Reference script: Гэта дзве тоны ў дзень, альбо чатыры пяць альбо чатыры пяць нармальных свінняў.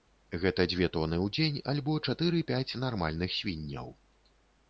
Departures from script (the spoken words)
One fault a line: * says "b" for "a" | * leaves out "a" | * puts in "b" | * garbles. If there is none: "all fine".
* leaves out "альбо чатыры пяць"